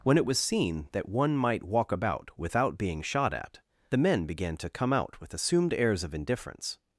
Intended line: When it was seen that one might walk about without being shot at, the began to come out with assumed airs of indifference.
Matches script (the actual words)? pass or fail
fail